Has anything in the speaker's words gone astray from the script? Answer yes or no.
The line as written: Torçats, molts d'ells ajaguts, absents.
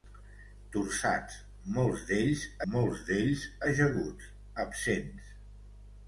yes